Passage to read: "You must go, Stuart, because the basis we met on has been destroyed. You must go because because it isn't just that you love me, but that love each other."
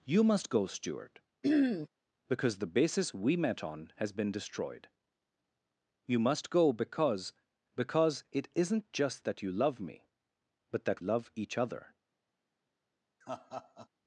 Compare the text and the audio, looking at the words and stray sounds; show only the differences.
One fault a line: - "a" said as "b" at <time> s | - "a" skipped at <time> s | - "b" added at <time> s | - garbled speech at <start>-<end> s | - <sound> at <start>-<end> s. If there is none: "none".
- throat clearing at 1.4-1.9 s
- laugh at 13.2-13.9 s